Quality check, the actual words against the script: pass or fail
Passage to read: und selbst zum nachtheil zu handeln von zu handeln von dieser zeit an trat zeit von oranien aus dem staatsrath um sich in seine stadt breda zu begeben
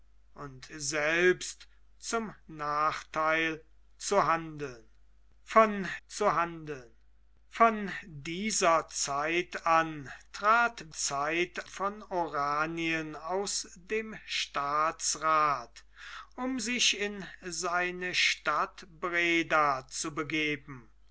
pass